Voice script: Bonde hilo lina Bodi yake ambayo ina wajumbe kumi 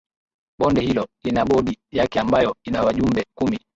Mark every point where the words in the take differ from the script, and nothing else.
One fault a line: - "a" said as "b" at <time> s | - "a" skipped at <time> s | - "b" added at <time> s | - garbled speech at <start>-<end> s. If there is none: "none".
none